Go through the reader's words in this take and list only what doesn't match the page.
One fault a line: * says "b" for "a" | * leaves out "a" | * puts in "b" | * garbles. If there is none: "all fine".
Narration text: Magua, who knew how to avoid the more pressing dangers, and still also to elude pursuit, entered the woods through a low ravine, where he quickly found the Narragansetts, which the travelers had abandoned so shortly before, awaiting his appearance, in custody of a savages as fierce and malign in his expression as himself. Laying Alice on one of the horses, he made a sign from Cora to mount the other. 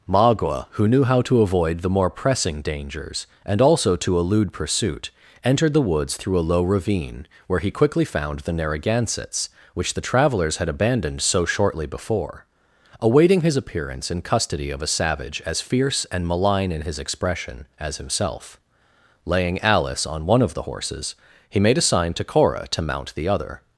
* leaves out "still"
* says "savage" for "savages"
* says "to" for "from"